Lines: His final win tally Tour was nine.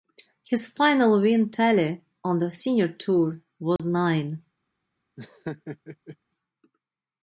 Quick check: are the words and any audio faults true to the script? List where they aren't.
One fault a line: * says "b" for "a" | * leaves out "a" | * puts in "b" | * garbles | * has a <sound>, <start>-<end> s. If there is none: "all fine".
* puts in "on the Senior"
* has a dropout, 3.8-3.8 s
* has a laugh, 5.2-6.2 s